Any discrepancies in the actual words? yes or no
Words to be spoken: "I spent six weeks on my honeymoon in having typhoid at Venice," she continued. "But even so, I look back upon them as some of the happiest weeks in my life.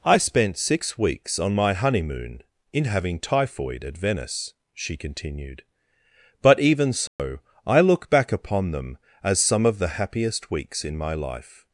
no